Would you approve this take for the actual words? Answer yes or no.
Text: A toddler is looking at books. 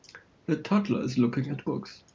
yes